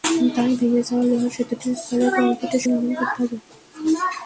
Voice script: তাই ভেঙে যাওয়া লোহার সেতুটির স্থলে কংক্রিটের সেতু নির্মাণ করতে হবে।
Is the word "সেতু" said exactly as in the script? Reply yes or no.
no